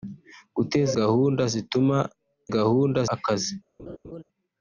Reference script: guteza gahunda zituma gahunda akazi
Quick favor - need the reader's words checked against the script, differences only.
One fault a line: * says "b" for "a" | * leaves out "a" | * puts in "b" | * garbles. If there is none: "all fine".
all fine